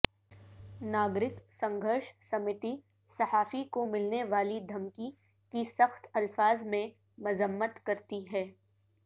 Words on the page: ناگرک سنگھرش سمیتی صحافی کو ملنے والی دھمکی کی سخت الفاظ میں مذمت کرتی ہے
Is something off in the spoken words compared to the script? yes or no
no